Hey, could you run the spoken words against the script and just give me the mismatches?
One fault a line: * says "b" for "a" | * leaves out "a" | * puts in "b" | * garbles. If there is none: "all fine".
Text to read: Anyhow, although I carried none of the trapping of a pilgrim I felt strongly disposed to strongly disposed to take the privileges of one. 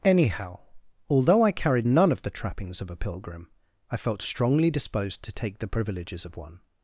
* says "trappings" for "trapping"
* leaves out "strongly disposed to"